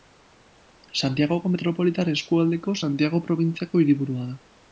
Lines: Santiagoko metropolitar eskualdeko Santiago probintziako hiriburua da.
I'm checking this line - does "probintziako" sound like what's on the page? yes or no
yes